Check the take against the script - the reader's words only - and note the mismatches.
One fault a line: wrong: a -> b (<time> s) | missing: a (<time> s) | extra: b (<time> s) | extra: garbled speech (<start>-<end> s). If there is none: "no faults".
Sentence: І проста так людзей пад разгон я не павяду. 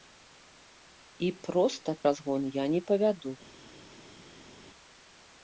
missing: так людзей пад (1.9 s)